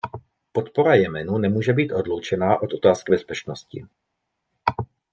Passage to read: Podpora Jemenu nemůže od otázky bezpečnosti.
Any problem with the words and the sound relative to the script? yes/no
yes